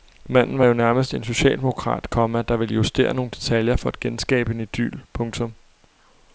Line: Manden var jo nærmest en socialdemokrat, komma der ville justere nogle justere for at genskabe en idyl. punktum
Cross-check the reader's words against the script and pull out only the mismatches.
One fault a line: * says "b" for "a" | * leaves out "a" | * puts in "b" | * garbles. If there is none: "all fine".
* says "detaljer" for "justere"